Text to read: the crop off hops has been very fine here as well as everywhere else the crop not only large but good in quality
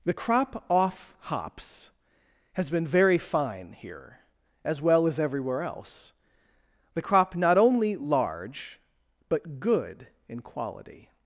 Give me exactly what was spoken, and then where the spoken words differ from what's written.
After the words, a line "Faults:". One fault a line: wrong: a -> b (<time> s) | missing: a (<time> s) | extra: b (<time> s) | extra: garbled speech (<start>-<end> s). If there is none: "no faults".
the crop off hops has been very fine here as well as everywhere else the crop not only large but good in quality
Faults:
no faults